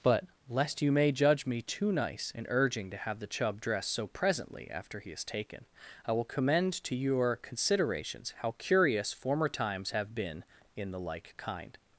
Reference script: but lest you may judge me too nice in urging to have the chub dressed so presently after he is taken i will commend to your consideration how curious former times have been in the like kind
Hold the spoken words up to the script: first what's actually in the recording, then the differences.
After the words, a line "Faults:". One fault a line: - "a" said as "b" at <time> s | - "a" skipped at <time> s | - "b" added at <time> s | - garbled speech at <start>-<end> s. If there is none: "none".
but lest you may judge me too nice in urging to have the chub dressed so presently after he is taken i will commend to your considerations how curious former times have been in the like kind
Faults:
- "consideration" said as "considerations" at 7.3 s